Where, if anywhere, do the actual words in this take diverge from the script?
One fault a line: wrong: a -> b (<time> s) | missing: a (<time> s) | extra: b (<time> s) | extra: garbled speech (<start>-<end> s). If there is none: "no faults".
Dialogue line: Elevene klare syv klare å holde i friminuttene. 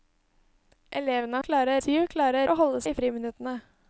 no faults